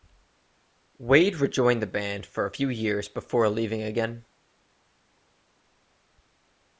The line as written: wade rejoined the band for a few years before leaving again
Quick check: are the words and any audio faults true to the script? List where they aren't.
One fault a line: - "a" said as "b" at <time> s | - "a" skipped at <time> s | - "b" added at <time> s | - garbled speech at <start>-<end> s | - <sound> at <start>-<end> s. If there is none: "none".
none